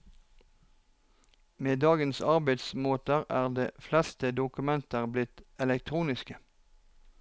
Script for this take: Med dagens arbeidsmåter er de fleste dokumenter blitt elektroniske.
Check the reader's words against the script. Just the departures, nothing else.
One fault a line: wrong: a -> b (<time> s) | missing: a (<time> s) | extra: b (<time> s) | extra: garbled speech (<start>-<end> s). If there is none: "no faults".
no faults